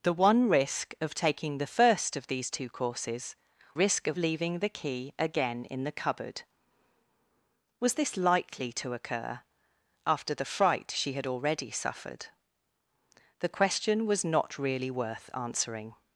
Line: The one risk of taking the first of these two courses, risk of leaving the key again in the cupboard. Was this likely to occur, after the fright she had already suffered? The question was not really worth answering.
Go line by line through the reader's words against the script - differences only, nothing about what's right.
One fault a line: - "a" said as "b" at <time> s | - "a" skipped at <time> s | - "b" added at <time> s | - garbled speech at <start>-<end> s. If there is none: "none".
none